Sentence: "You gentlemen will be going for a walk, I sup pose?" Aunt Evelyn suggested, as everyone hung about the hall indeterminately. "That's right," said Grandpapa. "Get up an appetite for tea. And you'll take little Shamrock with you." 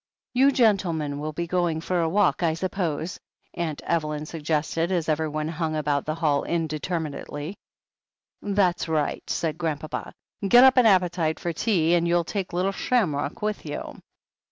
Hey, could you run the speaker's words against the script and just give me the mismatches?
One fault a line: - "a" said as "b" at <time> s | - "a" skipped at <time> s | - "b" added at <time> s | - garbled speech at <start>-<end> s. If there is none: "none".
none